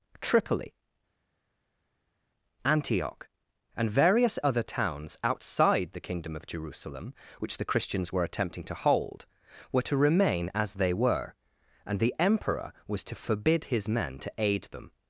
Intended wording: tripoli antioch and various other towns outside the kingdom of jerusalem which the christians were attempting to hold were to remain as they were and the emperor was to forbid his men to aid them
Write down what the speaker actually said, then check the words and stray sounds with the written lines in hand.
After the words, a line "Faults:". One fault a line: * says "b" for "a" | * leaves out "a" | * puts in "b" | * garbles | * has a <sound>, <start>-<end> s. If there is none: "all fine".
tripoli antioch and various other towns outside the kingdom of jerusalem which the christians were attempting to hold were to remain as they were and the emperor was to forbid his men to aid them
Faults:
all fine